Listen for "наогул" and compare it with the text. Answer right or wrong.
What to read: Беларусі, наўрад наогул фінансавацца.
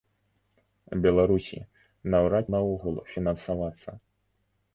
right